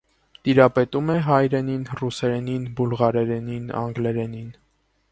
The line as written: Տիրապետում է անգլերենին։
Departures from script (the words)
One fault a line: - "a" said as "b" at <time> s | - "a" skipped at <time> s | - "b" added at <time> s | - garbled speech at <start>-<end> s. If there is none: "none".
- "հայերենին ռուսերենին բուլղարերենին" added at 1.3 s